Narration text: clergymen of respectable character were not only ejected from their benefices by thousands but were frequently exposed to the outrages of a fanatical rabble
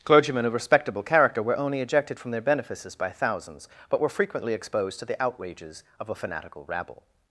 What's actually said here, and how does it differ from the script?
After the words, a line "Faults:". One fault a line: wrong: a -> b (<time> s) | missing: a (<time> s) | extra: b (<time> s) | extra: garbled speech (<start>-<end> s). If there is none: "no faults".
clergymen of respectable character were only ejected from their benefices by thousands but were frequently exposed to the outrages of a fanatical rabble
Faults:
missing: not (1.6 s)